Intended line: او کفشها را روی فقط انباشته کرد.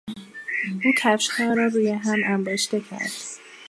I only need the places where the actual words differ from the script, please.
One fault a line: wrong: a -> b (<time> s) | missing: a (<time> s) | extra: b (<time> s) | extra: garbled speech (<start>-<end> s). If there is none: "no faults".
wrong: فقط -> هم (1.9 s)